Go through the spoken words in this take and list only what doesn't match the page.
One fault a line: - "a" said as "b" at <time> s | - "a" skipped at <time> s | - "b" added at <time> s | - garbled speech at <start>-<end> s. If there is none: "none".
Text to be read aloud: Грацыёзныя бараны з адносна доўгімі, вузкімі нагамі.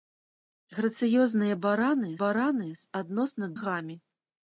- "бараны" added at 2.2 s
- "доўгімі вузкімі" skipped at 3.5 s